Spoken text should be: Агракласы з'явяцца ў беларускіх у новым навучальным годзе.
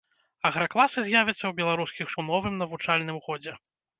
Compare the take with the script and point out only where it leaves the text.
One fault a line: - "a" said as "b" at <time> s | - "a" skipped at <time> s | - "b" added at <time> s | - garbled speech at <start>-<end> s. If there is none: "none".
none